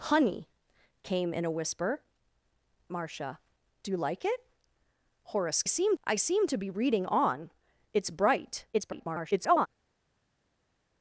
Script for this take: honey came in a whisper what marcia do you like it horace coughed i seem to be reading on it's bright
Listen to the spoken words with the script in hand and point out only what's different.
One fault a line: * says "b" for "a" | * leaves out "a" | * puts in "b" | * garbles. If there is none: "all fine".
* leaves out "what"
* says "seem" for "coughed"
* garbles